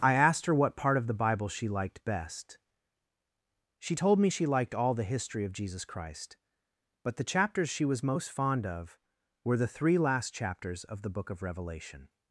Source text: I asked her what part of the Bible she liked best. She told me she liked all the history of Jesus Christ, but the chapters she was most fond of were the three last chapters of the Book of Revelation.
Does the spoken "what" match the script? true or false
true